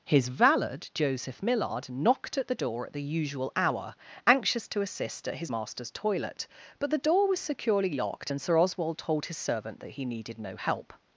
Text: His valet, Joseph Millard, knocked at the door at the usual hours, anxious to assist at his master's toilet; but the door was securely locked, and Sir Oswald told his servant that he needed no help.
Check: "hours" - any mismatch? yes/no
yes